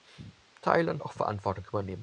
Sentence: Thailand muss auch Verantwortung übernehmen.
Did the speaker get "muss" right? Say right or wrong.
wrong